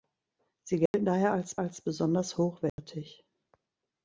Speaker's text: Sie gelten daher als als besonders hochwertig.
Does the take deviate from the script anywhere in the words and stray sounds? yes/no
yes